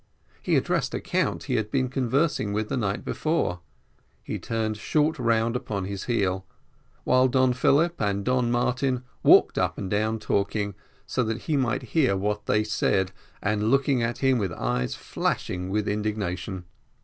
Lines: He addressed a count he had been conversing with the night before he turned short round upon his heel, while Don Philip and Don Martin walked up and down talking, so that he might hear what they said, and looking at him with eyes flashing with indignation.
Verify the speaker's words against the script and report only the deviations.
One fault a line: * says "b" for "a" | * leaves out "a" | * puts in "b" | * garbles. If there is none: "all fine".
all fine